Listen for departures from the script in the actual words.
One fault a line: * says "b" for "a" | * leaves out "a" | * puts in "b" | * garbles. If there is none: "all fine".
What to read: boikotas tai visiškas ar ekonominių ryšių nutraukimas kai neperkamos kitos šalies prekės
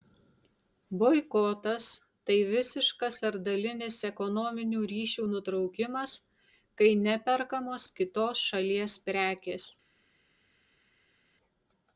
* puts in "dalinis"